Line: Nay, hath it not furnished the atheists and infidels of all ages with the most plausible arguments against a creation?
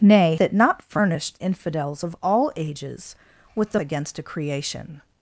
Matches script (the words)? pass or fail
fail